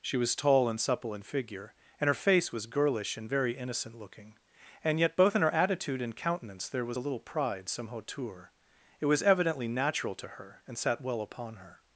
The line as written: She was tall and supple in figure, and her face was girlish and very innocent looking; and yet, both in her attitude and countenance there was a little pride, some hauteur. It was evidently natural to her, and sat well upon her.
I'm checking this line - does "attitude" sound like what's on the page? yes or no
yes